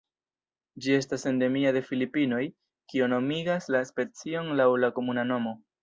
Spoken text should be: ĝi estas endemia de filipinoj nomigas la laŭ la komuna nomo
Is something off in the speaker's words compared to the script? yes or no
yes